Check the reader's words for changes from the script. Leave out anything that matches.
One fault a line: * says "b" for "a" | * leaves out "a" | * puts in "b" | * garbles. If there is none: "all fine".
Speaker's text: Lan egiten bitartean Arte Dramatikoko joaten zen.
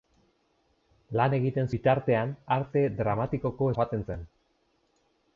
all fine